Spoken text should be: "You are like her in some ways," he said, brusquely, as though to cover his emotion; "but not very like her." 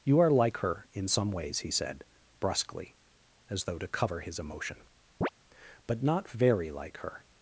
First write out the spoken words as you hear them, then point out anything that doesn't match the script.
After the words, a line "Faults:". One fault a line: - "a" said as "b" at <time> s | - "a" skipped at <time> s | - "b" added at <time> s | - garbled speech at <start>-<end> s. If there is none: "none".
"You are like her in some ways," he said, brusquely, as though to cover his emotion; "but not very like her."
Faults:
none